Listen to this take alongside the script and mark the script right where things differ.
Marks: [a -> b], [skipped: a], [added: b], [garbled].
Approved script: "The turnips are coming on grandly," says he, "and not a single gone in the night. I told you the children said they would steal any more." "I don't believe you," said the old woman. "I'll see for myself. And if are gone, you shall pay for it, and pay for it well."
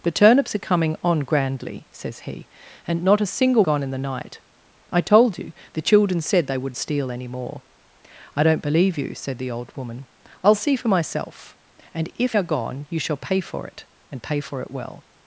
"The turnips are coming on grandly," says he, "and not a single gone in the night. I told you the children said they would steal any more." "I don't believe you," said the old woman. "I'll see for myself. And if are gone, you shall pay for it, and pay for it well."